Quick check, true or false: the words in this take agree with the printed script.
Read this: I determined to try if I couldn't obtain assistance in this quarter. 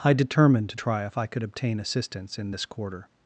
false